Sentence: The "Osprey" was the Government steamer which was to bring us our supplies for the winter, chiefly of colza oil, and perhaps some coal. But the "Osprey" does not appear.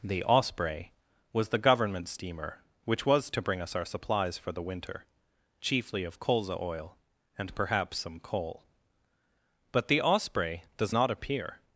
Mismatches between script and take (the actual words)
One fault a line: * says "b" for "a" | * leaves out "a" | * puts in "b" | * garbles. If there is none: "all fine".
all fine